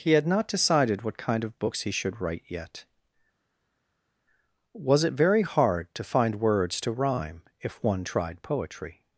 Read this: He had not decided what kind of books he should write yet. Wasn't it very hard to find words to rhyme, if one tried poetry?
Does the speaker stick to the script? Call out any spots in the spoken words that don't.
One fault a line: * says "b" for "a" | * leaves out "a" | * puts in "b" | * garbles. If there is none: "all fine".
* says "Was" for "Wasn't"